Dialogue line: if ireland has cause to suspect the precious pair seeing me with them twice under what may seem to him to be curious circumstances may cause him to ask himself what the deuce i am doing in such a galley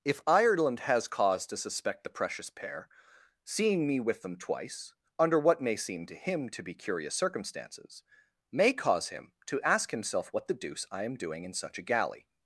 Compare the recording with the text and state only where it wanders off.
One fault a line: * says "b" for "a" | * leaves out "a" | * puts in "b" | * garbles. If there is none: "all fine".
all fine